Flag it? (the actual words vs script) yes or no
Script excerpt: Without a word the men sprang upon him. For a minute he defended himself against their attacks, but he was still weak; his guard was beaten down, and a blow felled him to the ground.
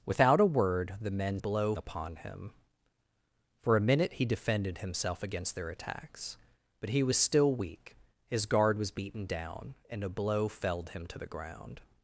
yes